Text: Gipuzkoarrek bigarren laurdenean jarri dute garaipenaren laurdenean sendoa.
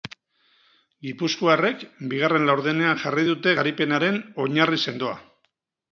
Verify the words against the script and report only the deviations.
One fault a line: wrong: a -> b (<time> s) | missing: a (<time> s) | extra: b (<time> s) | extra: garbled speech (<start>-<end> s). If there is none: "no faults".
wrong: laurdenean -> oinarri (4.5 s)